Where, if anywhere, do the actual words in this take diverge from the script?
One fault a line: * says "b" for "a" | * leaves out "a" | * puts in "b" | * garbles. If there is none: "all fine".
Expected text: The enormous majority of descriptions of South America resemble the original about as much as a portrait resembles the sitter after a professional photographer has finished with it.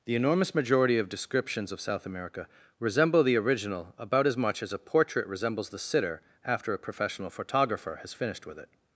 all fine